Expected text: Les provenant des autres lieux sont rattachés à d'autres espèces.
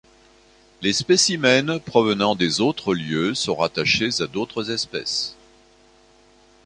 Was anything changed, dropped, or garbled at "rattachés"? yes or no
no